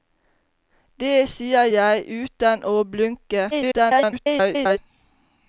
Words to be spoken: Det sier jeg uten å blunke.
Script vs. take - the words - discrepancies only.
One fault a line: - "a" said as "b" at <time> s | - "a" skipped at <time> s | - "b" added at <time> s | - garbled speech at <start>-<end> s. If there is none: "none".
- garbled speech at 3.5-4.8 s